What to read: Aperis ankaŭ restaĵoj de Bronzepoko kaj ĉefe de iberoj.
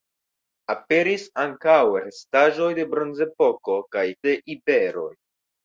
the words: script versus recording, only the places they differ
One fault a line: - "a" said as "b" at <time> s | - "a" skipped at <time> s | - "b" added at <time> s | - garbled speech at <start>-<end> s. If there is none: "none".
- "ĉefe" skipped at 4.1 s